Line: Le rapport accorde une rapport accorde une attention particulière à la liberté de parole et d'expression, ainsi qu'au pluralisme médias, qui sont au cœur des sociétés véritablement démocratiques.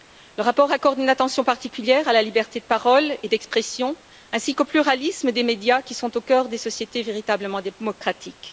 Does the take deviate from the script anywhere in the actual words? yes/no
yes